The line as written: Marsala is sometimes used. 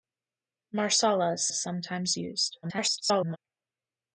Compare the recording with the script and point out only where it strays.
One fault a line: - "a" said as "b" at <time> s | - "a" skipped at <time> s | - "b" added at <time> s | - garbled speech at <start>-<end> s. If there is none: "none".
- "is" added at 1.5 s
- garbled speech at 2.6-3.4 s